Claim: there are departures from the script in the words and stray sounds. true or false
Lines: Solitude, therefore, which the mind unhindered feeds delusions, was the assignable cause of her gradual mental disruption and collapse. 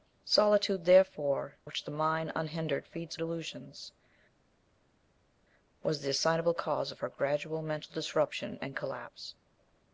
false